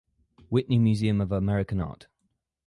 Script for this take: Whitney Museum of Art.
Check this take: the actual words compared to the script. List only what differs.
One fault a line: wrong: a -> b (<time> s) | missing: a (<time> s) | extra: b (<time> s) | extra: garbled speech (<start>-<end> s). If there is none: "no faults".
extra: American (1.3 s)